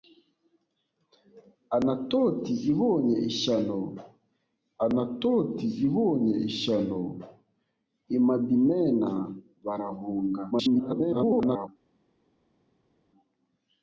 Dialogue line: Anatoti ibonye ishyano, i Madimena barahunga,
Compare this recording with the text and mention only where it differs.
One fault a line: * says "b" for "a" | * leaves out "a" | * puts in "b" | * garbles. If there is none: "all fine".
* puts in "anatoti ibonye ishyano"
* garbles